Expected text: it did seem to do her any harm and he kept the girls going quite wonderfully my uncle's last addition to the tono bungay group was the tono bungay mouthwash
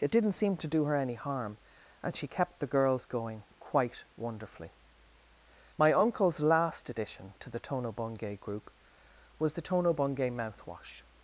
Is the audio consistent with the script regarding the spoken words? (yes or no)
no